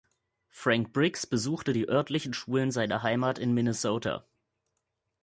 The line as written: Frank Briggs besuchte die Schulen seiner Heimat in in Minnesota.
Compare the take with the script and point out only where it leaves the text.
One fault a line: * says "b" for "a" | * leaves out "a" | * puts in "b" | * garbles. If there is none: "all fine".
* puts in "örtlichen"
* leaves out "in"